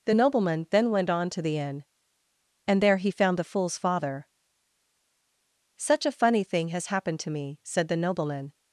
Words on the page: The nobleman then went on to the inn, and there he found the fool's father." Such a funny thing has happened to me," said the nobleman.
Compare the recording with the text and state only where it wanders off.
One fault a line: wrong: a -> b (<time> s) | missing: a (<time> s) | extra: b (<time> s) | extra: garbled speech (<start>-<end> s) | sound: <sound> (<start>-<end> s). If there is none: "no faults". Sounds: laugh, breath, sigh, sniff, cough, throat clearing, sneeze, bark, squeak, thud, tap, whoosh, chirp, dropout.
no faults